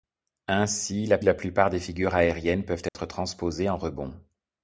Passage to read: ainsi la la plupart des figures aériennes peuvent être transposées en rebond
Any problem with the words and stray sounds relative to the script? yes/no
yes